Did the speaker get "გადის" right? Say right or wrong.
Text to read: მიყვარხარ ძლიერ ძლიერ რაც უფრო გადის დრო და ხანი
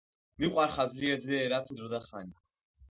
wrong